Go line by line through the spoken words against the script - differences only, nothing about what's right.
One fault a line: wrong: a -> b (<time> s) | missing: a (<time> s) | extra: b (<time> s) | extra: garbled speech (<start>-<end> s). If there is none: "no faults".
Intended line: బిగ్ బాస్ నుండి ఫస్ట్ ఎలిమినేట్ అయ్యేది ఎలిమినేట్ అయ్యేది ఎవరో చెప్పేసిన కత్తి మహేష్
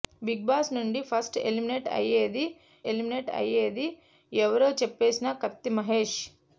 no faults